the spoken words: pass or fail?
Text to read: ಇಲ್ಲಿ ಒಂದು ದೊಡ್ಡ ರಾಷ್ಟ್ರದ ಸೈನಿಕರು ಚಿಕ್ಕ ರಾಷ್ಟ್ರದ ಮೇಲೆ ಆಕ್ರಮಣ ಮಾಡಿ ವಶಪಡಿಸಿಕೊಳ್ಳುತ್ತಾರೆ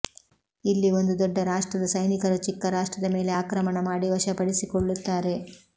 pass